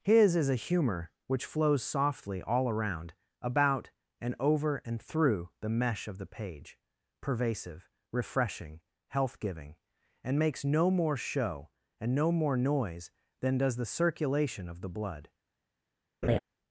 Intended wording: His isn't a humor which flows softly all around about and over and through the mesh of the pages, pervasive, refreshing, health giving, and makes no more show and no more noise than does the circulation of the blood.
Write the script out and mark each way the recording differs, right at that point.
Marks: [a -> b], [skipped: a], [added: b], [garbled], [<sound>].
His [isn't -> is] a humor which flows softly all around about and over and through the mesh of the [pages, -> page] pervasive, refreshing, health giving, and makes no more show and no more noise than does the circulation of the blood. [laugh]